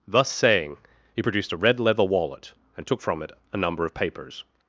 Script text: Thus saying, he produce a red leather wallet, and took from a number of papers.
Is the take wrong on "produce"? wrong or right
wrong